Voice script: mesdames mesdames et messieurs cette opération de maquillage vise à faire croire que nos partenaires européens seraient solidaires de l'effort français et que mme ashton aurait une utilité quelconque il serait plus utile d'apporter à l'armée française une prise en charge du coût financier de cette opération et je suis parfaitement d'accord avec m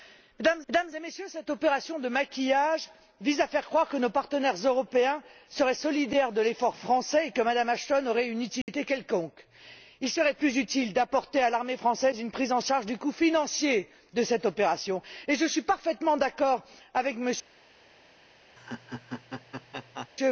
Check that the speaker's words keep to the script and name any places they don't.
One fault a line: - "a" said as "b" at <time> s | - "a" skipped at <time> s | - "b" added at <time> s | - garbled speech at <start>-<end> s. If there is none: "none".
none